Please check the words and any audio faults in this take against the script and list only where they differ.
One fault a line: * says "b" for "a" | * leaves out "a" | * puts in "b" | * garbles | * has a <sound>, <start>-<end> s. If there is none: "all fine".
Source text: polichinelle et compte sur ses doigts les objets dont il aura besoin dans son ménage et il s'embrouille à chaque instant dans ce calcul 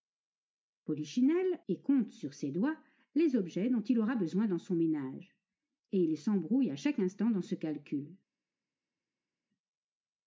all fine